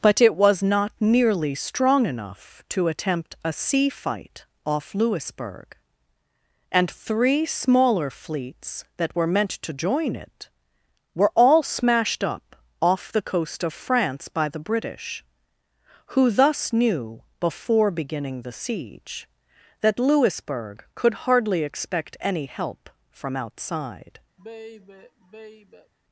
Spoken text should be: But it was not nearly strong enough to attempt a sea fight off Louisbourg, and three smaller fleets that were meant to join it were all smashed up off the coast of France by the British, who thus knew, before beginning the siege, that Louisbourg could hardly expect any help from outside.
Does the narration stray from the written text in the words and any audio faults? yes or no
yes